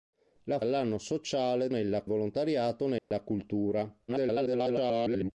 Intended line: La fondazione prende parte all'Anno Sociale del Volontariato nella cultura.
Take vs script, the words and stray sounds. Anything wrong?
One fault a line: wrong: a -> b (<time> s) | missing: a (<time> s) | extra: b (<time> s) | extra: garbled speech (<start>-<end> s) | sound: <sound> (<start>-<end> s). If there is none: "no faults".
missing: fondazione prende parte (0.6 s)
wrong: del -> nella (1.7 s)
sound: dropout (3.0-3.1 s)
extra: garbled speech (4.1-5.3 s)